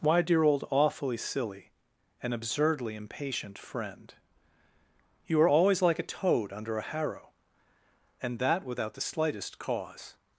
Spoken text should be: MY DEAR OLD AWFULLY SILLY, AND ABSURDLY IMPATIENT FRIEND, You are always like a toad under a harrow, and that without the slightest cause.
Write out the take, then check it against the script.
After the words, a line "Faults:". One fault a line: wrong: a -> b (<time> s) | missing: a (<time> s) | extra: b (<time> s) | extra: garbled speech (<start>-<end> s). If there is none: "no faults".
Why DEAR OLD AWFULLY SILLY, AND ABSURDLY IMPATIENT FRIEND, You are always like a toad under a harrow, and that without the slightest cause.
Faults:
wrong: MY -> Why (0.0 s)